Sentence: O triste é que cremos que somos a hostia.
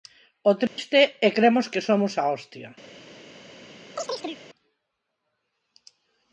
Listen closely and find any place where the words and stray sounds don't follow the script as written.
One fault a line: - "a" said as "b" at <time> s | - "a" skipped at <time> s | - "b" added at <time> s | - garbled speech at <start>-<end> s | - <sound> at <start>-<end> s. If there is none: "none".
- dropout at 0.7-0.8 s
- "que" skipped at 1.3 s
- chirp at 4.0-4.4 s